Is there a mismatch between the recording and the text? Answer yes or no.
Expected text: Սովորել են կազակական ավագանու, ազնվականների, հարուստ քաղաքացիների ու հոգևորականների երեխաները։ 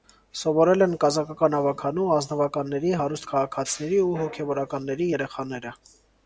no